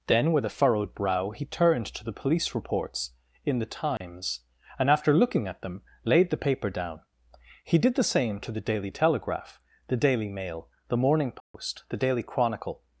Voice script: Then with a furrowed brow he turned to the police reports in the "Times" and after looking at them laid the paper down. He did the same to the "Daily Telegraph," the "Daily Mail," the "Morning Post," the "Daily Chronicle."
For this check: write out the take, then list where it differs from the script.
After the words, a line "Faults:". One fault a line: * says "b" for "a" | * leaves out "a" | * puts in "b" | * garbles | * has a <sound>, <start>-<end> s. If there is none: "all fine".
Then with a furrowed brow he turned to the police reports in the "Times" and after looking at them laid the paper down. He did the same to the "Daily Telegraph," the "Daily Mail," the "Morning Post," the "Daily Chronicle."
Faults:
* has a dropout, 4.0-4.0 s
* has a dropout, 11.4-11.5 s